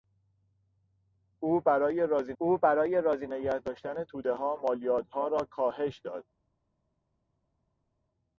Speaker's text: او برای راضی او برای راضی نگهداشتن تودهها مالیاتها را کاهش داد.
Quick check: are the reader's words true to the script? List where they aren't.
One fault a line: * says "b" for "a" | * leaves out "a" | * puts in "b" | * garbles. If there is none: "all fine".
all fine